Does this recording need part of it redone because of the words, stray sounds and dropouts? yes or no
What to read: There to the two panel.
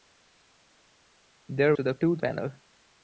no